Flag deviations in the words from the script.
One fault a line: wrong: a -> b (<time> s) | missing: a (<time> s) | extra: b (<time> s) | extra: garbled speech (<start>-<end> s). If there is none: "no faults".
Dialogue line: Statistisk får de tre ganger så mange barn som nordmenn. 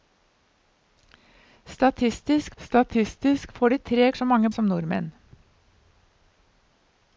extra: statistisk (2.6 s)
missing: ganger (4.1 s)
missing: barn (4.5 s)